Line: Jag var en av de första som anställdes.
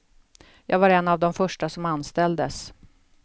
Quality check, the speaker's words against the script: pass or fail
pass